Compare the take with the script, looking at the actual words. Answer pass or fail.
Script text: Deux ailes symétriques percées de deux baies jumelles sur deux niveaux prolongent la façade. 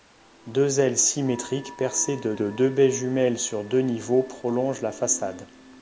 fail